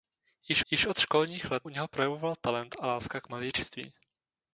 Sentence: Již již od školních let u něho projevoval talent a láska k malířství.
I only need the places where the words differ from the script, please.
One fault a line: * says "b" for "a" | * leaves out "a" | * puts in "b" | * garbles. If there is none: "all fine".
all fine